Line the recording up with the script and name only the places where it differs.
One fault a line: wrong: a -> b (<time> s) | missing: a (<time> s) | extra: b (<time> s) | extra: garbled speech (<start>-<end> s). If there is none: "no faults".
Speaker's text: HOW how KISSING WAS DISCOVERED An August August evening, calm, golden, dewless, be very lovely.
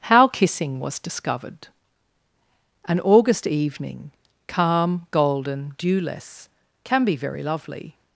missing: how (0.3 s)
missing: August (3.5 s)
extra: can (6.8 s)